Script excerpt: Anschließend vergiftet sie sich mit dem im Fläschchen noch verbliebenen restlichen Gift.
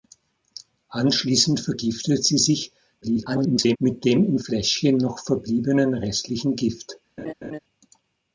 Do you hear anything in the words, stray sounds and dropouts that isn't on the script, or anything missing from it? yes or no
yes